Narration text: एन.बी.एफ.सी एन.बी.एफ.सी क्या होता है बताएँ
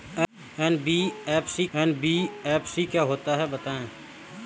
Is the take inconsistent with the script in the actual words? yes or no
no